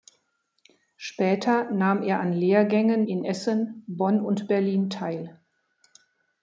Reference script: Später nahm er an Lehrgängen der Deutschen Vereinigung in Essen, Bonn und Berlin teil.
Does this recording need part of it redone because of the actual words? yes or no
yes